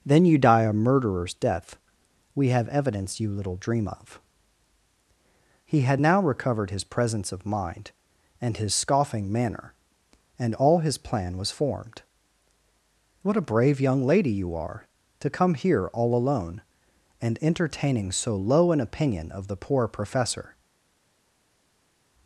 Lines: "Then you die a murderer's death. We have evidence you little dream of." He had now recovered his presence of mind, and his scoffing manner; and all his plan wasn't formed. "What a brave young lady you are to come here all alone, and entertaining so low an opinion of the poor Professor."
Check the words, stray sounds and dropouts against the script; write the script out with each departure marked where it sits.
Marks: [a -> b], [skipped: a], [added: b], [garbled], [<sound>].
"Then you die a murderer's death. We have evidence you little dream of." He had now recovered his presence of mind, and his scoffing manner; and all his plan [wasn't -> was] formed. "What a brave young lady you are to come here all alone, and entertaining so low an opinion of the poor Professor."